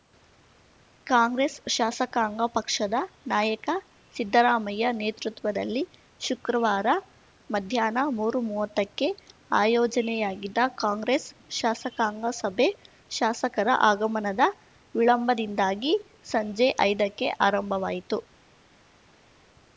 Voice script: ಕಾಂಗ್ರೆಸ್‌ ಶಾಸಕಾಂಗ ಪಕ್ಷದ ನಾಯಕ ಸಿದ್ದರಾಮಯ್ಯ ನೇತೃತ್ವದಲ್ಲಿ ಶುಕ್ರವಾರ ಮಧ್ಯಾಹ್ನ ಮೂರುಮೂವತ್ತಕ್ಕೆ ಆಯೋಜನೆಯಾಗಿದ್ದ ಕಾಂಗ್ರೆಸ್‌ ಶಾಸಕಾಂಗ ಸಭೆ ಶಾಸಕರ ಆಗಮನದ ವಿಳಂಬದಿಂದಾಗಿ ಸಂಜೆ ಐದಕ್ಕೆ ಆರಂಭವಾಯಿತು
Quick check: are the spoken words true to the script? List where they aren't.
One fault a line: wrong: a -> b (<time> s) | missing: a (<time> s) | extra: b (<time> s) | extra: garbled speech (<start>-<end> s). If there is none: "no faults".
no faults